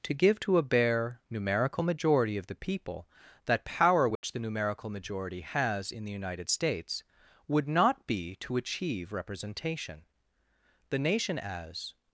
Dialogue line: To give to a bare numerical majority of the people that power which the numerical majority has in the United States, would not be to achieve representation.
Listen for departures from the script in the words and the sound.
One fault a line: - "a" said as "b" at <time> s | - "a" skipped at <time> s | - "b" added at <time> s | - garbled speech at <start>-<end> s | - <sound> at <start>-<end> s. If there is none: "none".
- dropout at 4.2-4.2 s
- "The nation as" added at 10.9 s